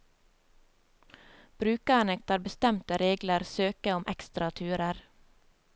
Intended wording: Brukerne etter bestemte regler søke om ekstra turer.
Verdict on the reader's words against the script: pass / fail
pass